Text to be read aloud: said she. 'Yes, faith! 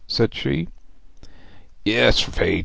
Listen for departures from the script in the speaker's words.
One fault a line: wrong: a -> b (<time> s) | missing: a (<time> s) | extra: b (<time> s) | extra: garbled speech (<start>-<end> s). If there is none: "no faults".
no faults